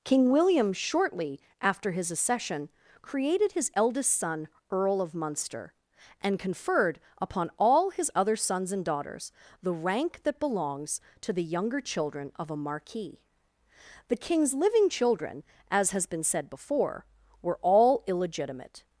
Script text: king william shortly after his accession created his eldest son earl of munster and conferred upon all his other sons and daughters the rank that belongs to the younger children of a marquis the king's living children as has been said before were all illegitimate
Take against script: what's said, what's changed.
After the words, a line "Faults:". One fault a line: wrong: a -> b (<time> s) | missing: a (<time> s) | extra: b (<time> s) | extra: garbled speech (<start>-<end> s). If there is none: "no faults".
king william shortly after his accession created his eldest son earl of munster and conferred upon all his other sons and daughters the rank that belongs to the younger children of a marquis the king's living children as has been said before were all illegitimate
Faults:
no faults